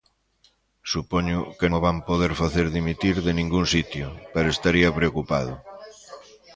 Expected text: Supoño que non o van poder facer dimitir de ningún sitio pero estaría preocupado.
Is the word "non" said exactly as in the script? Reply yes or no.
no